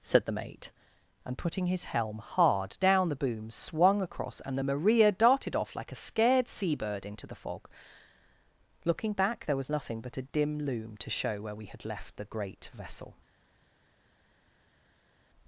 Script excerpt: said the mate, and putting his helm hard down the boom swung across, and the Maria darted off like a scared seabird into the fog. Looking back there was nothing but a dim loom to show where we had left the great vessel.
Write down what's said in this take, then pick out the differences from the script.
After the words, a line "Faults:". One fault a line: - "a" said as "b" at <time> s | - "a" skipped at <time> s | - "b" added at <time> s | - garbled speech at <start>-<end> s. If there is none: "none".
said the mate, and putting his helm hard down the boom swung across, and the Maria darted off like a scared seabird into the fog. Looking back there was nothing but a dim loom to show where we had left the great vessel.
Faults:
none